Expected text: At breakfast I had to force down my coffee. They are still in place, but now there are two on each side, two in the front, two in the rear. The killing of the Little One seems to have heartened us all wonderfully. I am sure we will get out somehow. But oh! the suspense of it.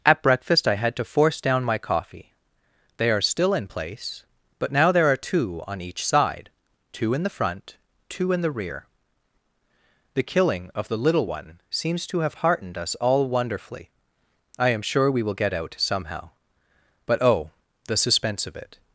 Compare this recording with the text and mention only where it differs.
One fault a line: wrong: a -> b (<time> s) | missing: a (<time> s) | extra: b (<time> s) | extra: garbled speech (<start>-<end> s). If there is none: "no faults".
no faults